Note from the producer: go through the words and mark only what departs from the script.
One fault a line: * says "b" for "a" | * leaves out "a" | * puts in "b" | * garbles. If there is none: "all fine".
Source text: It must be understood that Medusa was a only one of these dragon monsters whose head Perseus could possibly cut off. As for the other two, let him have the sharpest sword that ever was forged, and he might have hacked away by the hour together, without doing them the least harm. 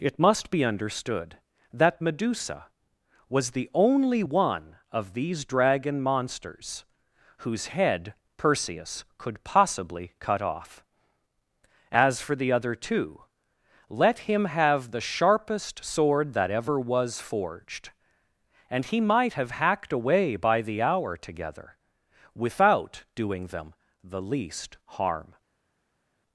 * says "the" for "a"